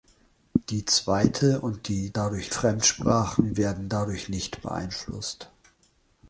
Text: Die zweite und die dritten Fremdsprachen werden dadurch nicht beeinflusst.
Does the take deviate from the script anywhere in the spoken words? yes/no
yes